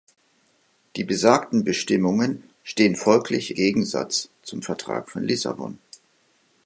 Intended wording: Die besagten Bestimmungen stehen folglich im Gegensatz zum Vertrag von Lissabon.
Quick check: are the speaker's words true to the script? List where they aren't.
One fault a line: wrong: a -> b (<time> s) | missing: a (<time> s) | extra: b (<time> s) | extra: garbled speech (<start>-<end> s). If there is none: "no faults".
missing: im (3.5 s)